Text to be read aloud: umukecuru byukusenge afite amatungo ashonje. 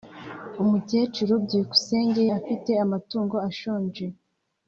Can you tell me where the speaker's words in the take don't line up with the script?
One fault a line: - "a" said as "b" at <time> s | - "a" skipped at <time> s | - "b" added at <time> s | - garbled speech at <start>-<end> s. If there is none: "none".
none